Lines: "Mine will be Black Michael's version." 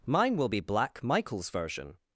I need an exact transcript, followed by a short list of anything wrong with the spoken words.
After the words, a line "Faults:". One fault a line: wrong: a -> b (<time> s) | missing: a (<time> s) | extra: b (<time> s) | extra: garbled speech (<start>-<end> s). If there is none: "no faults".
"Mine will be Black Michael's version."
Faults:
no faults